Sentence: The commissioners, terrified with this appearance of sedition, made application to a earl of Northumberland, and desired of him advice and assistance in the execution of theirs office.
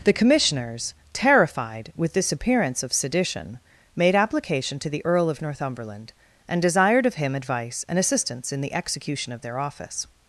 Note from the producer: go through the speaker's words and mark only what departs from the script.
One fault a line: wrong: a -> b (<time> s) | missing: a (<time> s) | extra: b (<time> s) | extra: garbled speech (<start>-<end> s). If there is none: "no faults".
wrong: a -> the (4.9 s)
wrong: theirs -> their (9.4 s)